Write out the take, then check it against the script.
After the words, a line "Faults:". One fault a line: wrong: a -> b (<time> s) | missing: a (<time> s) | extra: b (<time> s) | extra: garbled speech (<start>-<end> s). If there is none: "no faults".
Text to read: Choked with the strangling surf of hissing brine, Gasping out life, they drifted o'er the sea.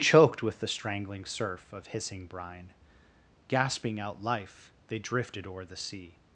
Choked with the strangling surf of hissing brine, Gasping out life, they drifted o'er the sea.
Faults:
no faults